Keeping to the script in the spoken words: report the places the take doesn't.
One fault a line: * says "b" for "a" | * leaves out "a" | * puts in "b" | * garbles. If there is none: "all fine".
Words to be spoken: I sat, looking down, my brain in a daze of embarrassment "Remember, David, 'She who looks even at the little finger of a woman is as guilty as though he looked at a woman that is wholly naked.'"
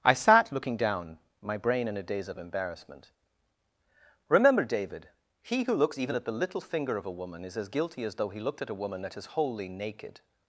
* says "He" for "She"